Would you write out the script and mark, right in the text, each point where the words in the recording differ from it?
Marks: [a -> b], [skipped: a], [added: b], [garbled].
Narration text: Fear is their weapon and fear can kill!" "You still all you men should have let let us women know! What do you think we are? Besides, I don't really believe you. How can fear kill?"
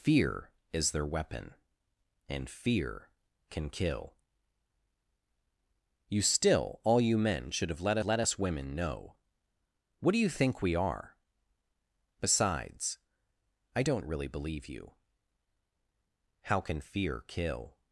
Fear is their weapon and fear can kill!" "You still all you men should have let let us women know! What do you think we are? Besides, I don't really believe you. How can fear kill?"